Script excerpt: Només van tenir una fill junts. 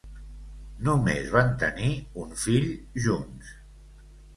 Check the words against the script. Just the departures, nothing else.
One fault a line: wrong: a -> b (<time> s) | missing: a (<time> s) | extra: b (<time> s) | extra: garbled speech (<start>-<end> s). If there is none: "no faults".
wrong: una -> un (2.2 s)